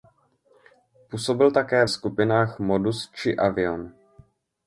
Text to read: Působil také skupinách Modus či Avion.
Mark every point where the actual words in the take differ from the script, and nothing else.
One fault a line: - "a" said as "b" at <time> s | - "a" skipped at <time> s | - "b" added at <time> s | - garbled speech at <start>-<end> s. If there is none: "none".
none